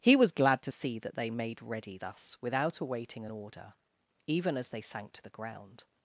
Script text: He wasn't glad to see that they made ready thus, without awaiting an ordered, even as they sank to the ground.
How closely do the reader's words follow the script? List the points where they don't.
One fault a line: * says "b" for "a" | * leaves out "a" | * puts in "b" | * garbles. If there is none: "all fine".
* says "was" for "wasn't"
* says "order" for "ordered"